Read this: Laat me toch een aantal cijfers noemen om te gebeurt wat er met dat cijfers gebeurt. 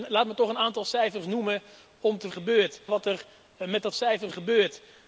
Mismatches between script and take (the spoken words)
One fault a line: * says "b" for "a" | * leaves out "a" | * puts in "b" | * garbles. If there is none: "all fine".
all fine